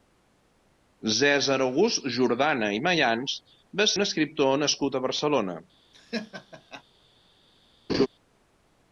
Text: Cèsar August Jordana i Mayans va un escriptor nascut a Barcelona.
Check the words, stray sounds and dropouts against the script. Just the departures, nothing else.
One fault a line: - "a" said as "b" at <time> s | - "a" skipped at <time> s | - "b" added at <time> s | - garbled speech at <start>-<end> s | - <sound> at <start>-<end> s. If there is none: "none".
- laugh at 5.9-6.8 s
- laugh at 7.9-8.1 s